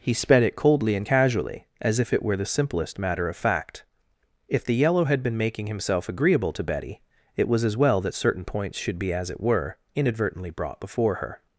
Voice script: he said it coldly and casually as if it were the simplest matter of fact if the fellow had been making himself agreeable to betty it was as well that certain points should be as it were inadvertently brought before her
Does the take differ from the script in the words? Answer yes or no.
yes